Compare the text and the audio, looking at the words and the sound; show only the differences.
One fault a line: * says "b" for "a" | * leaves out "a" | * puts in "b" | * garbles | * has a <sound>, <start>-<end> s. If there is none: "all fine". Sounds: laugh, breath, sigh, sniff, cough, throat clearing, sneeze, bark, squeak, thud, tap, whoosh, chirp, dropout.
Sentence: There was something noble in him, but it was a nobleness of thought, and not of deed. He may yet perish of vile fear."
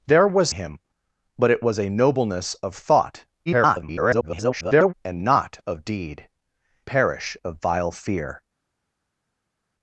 * leaves out "something noble in"
* garbles
* leaves out "He may yet"